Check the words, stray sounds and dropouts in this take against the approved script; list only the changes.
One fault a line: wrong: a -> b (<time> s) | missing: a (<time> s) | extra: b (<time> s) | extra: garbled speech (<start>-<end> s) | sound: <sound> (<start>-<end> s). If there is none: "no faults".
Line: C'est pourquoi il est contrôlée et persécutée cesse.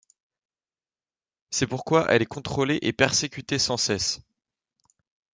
wrong: il -> elle (2.1 s)
extra: sans (3.6 s)